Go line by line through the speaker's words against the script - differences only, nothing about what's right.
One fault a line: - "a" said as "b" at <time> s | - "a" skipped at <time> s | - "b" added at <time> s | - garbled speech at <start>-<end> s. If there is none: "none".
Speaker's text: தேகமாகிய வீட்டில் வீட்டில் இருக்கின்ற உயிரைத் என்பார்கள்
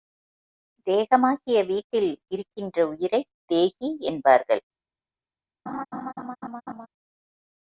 - "வீட்டில்" skipped at 2.1 s
- "தேகி" added at 3.4 s